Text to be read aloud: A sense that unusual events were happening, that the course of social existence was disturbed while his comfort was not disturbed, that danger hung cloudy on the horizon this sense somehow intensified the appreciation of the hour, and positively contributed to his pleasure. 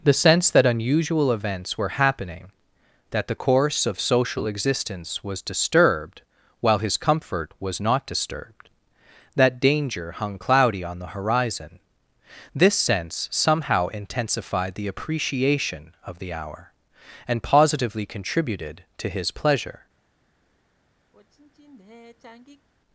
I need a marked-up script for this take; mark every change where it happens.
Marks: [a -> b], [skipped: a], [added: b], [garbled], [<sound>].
[A -> The] sense that unusual events were happening, that the course of social existence was disturbed while his comfort was not disturbed, that danger hung cloudy on the horizon this sense somehow intensified the appreciation of the hour, and positively contributed to his pleasure. [sigh]